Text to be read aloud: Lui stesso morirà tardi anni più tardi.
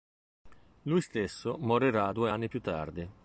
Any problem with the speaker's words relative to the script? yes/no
yes